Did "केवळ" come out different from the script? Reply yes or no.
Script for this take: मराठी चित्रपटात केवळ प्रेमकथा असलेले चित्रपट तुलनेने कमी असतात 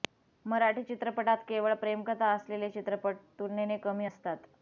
no